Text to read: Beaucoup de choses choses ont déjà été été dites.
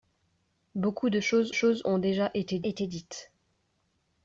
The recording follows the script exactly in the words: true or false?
true